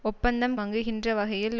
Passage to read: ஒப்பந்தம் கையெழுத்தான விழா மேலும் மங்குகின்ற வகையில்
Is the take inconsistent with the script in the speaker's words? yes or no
yes